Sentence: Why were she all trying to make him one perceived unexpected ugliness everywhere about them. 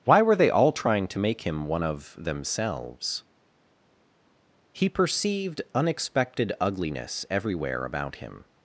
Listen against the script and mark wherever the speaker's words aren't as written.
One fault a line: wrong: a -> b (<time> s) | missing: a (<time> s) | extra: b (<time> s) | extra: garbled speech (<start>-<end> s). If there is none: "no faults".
wrong: she -> they (0.3 s)
extra: of themselves He (1.8 s)
wrong: them -> him (8.2 s)